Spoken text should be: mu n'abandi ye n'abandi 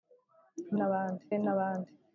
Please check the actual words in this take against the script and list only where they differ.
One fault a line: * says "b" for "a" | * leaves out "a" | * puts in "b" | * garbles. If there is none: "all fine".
all fine